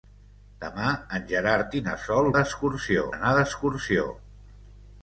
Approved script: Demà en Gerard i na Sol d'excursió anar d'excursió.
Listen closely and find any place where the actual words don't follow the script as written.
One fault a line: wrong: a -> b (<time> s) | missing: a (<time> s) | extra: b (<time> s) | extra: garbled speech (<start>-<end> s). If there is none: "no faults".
no faults